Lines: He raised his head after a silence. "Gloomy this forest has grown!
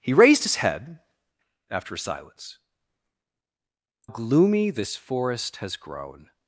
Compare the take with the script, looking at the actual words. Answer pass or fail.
pass